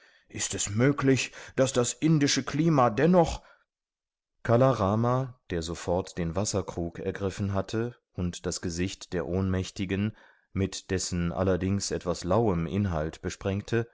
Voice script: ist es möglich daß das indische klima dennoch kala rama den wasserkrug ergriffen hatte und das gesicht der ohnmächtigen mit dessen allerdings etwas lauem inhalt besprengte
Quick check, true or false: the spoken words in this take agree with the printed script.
false